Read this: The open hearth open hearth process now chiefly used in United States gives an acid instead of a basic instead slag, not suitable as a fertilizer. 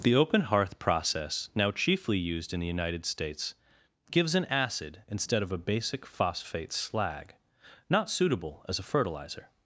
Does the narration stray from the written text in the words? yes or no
yes